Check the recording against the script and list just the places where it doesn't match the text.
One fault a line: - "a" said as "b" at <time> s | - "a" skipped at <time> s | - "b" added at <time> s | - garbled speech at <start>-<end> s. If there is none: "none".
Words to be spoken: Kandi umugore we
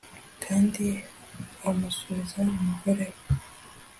- "amusubiza" added at 1.7 s